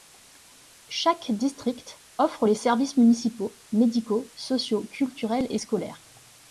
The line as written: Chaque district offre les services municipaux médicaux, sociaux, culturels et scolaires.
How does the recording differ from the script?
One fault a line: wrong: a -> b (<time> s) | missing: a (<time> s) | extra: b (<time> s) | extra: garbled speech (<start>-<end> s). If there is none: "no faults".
no faults